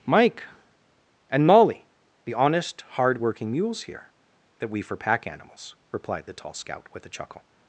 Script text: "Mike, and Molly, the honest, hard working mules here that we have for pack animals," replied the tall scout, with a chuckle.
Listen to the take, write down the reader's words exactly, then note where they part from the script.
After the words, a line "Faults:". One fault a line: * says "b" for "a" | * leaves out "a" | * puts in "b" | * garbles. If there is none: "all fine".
"Mike, and Molly, the honest, hard working mules here that we for pack animals," replied the tall scout, with a chuckle.
Faults:
* leaves out "have"